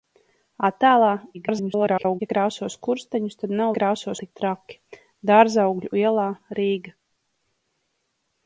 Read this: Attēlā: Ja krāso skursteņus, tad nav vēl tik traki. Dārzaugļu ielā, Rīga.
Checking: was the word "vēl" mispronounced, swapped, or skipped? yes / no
yes